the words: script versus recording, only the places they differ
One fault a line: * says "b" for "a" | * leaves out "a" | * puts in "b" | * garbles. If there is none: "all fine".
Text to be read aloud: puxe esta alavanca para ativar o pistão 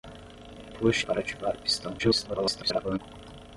* leaves out "esta alavanca"
* garbles